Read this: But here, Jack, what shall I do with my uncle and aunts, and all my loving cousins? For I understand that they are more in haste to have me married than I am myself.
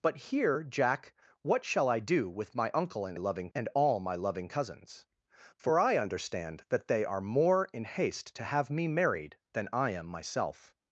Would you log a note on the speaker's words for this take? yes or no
yes